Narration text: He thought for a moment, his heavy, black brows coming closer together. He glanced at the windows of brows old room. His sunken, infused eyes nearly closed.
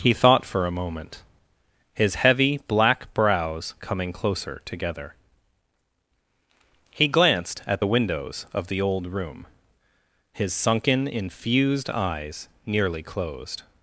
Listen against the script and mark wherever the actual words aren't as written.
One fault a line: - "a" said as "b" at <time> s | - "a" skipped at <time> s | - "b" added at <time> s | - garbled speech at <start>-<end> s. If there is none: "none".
- "brows" said as "the" at 8.7 s